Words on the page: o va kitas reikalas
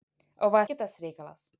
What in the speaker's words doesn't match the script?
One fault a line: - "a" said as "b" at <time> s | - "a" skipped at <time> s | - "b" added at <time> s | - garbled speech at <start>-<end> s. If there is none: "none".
none